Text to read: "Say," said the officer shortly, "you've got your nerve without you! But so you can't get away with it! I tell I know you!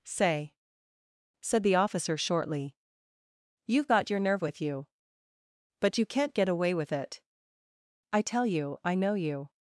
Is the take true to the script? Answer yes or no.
no